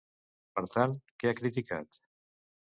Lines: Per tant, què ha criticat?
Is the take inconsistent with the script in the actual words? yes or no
no